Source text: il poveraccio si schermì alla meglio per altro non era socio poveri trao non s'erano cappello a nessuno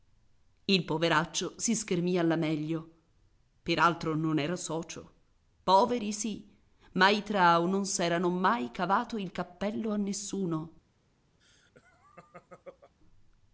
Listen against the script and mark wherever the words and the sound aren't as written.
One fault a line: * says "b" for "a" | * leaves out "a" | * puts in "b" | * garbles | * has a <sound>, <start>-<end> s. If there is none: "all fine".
* puts in "sì ma i"
* puts in "mai cavato il"
* has a laugh, 11.4-12.9 s